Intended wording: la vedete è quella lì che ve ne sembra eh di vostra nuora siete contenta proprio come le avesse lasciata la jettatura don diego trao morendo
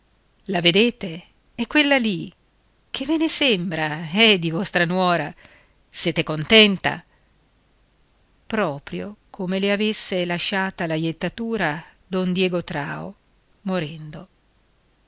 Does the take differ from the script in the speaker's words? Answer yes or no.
no